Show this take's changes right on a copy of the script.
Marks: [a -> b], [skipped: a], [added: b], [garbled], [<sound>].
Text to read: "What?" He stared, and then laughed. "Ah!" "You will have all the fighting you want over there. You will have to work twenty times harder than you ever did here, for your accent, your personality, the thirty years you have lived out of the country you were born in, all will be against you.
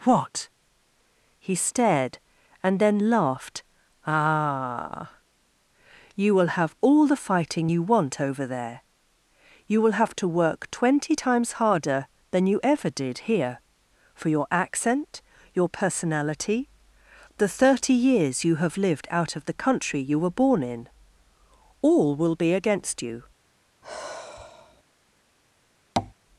"What?" He stared, and then laughed. "Ah!" "You will have all the fighting you want over there. You will have to work twenty times harder than you ever did here, for your accent, your personality, the thirty years you have lived out of the country you were born in, all will be against you. [sigh] [tap]